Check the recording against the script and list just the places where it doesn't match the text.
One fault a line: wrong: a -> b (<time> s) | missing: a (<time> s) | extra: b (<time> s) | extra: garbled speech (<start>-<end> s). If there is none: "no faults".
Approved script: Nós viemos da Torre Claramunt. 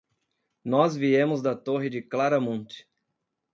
extra: de (1.8 s)